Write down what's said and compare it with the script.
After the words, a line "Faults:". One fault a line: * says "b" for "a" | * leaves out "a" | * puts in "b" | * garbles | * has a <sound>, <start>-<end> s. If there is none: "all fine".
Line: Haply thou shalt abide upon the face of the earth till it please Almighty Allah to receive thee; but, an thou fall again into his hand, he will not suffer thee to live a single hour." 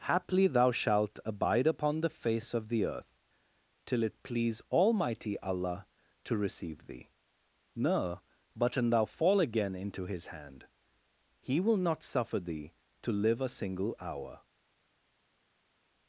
Haply thou shalt abide upon the face of the earth till it please Almighty Allah to receive thee; no but, an thou fall again into his hand, he will not suffer thee to live a single hour."
Faults:
* puts in "no"